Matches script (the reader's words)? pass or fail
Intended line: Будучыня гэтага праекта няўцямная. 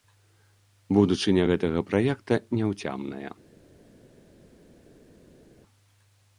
pass